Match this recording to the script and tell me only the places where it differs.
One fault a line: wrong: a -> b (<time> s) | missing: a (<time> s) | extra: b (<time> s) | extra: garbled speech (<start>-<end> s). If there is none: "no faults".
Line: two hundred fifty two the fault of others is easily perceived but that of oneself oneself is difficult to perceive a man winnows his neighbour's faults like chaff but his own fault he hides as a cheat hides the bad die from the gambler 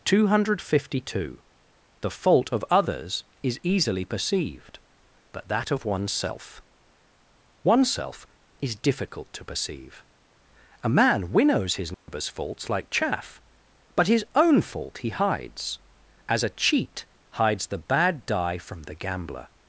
no faults